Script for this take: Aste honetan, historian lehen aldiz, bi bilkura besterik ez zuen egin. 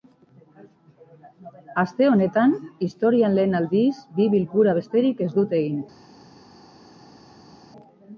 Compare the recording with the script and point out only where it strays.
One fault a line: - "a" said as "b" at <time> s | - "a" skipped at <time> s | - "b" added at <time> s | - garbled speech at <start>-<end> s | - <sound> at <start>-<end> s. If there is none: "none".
- "zuen" said as "dute" at 5.4 s